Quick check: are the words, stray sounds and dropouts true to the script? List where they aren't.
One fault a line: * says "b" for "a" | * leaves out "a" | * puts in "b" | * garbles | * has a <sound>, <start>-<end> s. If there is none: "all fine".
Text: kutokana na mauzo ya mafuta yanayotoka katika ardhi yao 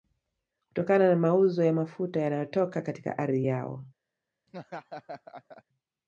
* has a laugh, 4.5-5.6 s